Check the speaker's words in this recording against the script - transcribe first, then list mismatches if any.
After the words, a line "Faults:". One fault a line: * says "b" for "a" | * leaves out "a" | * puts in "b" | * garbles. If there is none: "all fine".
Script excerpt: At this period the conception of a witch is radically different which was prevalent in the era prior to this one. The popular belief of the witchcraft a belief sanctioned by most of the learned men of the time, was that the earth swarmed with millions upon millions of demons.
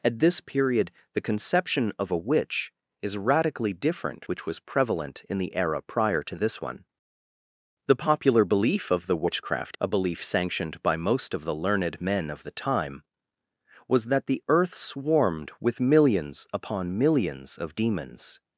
At this period the conception of a witch is radically different which was prevalent in the era prior to this one. The popular belief of the witchcraft a belief sanctioned by most of the learned men of the time, was that the earth swarmed with millions upon millions of demons.
Faults:
all fine